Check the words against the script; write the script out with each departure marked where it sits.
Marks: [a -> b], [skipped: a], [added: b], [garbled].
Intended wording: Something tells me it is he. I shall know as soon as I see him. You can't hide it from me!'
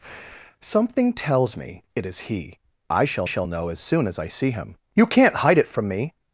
Something tells me it is he. I shall [added: shall] know as soon as I see him. You can't hide it from me!'